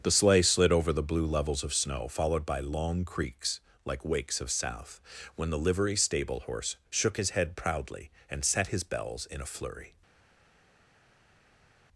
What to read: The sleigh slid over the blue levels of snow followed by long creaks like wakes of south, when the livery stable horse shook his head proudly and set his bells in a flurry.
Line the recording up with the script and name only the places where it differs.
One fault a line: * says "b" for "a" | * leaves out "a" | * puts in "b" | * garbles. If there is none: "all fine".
all fine